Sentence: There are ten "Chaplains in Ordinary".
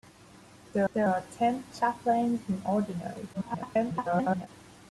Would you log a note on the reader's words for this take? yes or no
yes